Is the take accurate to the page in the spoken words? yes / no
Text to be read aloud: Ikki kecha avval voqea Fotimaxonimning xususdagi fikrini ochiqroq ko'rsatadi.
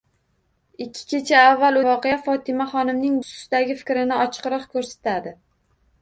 yes